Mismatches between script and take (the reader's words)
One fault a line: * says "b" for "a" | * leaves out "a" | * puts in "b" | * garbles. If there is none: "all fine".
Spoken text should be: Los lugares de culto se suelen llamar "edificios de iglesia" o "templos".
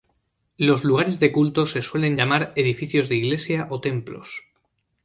all fine